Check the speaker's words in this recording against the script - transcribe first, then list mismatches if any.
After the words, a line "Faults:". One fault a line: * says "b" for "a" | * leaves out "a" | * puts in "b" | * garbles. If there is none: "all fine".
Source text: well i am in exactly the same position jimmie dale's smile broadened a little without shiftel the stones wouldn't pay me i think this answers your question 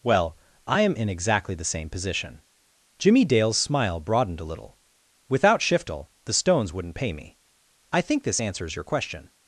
well i am in exactly the same position jimmie dale's smile broadened a little without shiftel the stones wouldn't pay me i think this answers your question
Faults:
all fine